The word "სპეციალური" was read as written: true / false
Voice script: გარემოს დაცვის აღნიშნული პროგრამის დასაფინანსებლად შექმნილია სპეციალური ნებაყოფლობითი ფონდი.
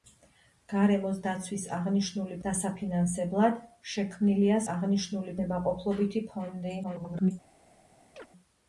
false